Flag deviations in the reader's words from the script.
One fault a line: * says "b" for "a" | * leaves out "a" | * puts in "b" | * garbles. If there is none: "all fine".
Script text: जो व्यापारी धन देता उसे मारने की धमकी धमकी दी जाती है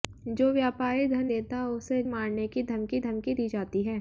all fine